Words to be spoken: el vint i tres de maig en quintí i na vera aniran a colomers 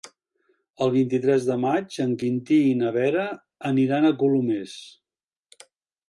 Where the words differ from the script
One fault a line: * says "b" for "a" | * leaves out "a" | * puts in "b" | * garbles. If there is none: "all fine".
all fine